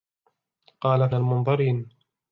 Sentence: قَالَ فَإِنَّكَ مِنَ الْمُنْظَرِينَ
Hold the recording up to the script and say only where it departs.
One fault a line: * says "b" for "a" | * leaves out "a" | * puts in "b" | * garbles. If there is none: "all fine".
* leaves out "فَإِنَّكَ مِنَ"